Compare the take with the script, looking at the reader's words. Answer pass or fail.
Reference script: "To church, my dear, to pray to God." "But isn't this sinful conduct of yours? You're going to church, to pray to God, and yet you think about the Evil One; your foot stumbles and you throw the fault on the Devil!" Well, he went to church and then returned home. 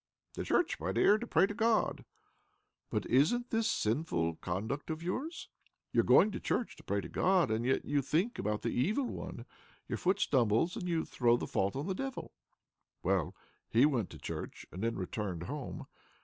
pass